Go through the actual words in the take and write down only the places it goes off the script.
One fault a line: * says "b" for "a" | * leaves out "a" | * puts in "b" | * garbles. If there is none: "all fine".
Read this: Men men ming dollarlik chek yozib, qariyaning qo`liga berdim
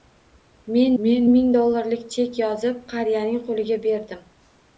all fine